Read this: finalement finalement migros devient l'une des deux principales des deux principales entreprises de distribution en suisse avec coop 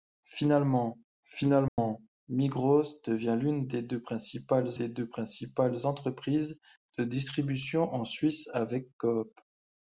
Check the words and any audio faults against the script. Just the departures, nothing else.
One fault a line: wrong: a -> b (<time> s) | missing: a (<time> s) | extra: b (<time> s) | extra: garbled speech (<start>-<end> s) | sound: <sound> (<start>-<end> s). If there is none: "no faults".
sound: dropout (1.7-1.8 s)